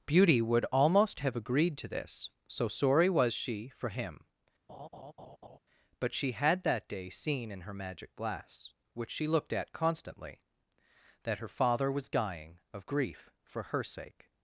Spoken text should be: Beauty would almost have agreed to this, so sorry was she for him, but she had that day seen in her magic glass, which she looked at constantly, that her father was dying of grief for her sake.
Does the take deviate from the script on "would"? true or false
false